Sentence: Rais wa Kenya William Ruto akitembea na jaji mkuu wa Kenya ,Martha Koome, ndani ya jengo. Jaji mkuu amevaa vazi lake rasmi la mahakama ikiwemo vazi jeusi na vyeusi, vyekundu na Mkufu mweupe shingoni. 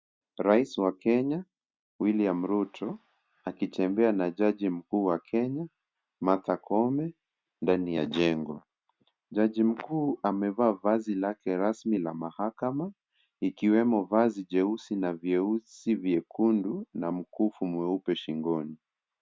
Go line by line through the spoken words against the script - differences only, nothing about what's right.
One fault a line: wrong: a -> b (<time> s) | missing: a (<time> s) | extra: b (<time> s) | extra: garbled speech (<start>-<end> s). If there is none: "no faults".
no faults